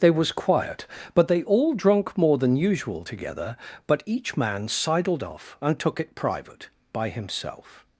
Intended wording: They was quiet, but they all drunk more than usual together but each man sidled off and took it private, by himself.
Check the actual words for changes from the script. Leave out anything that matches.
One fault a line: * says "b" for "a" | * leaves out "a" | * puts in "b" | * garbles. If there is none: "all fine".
all fine